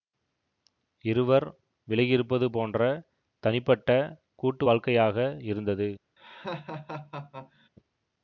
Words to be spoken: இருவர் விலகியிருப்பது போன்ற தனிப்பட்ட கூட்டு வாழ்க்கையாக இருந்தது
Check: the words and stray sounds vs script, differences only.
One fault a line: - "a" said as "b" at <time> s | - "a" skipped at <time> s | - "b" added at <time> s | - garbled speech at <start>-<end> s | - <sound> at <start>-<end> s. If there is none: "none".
- laugh at 6.2-7.7 s